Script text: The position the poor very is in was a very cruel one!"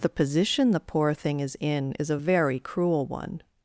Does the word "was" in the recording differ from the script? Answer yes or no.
yes